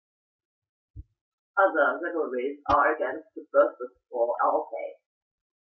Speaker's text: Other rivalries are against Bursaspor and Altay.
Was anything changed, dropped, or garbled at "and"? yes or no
yes